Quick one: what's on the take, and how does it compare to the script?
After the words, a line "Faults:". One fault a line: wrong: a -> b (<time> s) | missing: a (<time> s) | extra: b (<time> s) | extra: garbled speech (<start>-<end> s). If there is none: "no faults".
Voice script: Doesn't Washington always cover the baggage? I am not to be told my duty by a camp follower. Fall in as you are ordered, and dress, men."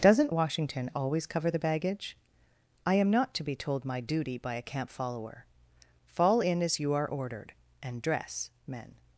Doesn't Washington always cover the baggage? I am not to be told my duty by a camp follower. Fall in as you are ordered, and dress, men."
Faults:
no faults